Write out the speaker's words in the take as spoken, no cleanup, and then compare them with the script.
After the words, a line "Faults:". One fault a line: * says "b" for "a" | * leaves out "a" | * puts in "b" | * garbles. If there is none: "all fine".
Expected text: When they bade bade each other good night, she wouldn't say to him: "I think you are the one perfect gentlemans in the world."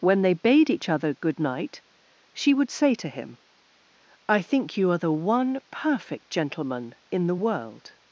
When they bade each other good night, she would say to him: "I think you are the one perfect gentleman in the world."
Faults:
* leaves out "bade"
* says "would" for "wouldn't"
* says "gentleman" for "gentlemans"